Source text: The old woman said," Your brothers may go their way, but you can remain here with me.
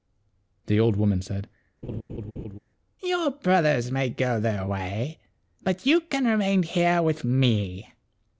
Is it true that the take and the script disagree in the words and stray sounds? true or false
true